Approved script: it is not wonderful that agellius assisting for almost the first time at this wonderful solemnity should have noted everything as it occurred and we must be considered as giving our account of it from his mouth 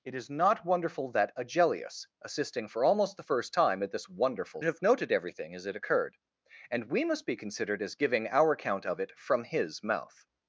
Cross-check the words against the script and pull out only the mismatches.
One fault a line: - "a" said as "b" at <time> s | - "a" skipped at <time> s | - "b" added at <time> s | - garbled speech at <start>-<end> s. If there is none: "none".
- "solemnity should" skipped at 4.6 s